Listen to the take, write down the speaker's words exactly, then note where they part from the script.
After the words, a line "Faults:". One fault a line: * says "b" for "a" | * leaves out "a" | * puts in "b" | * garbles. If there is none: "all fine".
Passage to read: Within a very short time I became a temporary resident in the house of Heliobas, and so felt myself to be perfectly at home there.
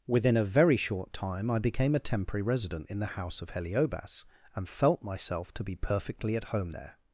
Within a very short time I became a temporary resident in the house of Heliobas, and felt myself to be perfectly at home there.
Faults:
* leaves out "so"